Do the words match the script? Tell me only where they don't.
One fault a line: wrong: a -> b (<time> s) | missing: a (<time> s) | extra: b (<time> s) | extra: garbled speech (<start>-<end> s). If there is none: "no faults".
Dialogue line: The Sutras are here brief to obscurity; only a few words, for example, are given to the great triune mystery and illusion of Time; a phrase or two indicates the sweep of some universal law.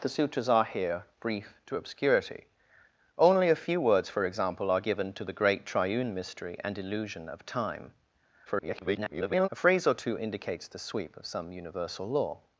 extra: garbled speech (8.5-9.5 s)